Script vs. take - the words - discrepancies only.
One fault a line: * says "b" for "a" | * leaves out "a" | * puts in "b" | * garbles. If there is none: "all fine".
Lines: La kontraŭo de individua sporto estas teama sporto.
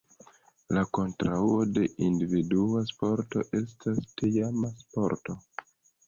all fine